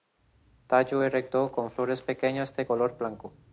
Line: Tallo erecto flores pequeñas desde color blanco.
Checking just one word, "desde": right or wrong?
wrong